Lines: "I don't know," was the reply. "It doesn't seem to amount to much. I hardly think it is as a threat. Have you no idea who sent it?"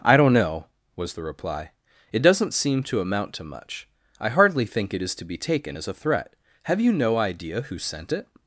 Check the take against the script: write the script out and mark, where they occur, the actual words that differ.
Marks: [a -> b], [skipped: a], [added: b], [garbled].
"I don't know," was the reply. "It doesn't seem to amount to much. I hardly think it is [added: to be taken] as a threat. Have you no idea who sent it?"